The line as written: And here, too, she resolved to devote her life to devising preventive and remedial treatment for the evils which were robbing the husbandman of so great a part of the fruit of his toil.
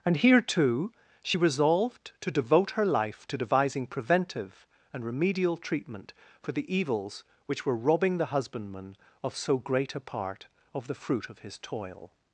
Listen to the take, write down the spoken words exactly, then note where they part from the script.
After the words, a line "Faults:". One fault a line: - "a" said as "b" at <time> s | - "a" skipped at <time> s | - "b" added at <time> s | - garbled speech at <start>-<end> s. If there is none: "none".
And here, too, she resolved to devote her life to devising preventive and remedial treatment for the evils which were robbing the husbandman of so great a part of the fruit of his toil.
Faults:
none